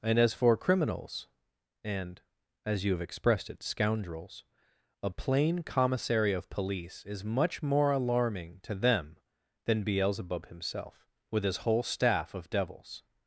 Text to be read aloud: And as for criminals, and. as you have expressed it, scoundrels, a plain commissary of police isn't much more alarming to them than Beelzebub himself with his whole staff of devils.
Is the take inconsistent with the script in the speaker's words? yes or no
yes